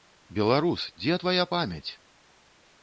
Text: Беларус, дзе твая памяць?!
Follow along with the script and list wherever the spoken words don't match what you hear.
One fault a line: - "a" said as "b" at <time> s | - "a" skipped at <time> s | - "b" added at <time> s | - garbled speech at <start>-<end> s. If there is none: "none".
none